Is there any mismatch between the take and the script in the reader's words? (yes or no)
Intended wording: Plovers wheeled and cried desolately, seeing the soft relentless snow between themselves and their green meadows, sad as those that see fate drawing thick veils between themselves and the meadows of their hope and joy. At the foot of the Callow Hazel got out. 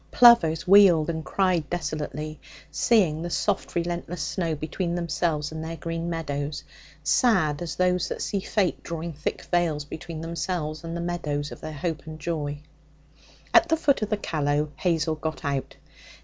no